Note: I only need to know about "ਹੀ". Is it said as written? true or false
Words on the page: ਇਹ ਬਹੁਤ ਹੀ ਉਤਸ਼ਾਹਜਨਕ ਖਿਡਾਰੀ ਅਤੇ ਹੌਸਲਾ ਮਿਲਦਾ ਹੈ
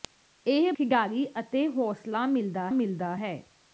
false